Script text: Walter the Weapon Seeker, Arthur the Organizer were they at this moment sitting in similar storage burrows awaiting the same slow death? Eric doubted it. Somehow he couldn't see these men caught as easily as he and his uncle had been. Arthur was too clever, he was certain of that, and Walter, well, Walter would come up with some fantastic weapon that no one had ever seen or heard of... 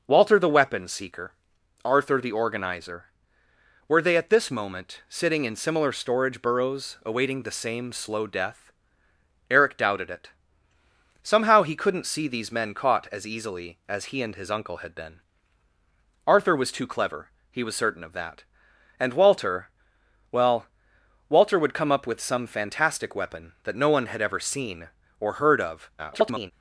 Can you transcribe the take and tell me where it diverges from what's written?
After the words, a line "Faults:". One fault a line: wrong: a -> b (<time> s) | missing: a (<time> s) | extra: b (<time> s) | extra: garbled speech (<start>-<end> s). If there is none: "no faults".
Walter the Weapon Seeker, Arthur the Organizer were they at this moment sitting in similar storage burrows awaiting the same slow death? Eric doubted it. Somehow he couldn't see these men caught as easily as he and his uncle had been. Arthur was too clever, he was certain of that, and Walter, well, Walter would come up with some fantastic weapon that no one had ever seen or heard of... [garbled]
Faults:
extra: garbled speech (26.0-26.5 s)